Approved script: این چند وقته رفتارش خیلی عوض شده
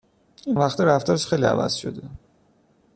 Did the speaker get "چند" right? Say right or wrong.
wrong